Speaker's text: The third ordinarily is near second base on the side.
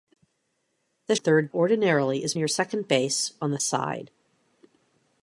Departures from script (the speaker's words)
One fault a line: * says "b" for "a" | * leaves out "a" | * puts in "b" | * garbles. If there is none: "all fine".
all fine